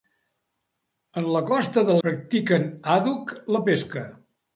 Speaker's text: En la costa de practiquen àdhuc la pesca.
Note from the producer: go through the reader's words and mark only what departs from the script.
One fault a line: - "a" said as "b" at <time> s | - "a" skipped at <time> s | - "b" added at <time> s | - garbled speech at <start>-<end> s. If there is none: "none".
none